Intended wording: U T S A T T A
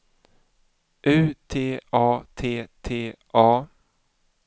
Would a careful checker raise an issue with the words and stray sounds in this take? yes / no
yes